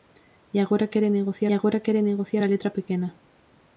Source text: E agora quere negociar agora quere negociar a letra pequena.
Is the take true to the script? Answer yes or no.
yes